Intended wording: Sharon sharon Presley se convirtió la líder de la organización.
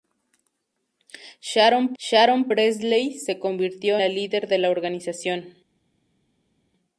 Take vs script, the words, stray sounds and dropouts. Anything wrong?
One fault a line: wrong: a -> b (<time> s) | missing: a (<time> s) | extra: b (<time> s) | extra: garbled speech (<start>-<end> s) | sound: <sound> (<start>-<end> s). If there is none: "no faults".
no faults